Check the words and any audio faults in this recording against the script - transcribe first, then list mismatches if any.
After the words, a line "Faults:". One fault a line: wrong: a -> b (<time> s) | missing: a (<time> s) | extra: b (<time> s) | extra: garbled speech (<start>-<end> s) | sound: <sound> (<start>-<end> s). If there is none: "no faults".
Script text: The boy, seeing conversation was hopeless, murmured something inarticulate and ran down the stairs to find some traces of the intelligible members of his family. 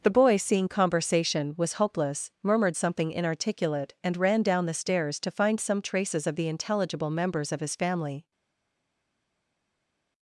The boy, seeing conversation was hopeless, murmured something inarticulate and ran down the stairs to find some traces of the intelligible members of his family.
Faults:
no faults